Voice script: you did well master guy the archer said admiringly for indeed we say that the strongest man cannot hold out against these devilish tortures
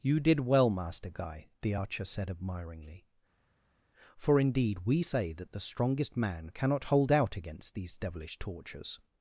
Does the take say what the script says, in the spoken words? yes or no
yes